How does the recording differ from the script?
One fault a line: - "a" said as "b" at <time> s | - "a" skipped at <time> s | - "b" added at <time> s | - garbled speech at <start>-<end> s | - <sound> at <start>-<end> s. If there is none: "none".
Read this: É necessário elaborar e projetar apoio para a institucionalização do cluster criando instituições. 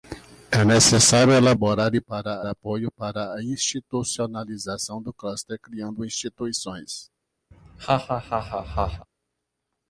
- "projetar" said as "para" at 2.0 s
- laugh at 7.5-9.1 s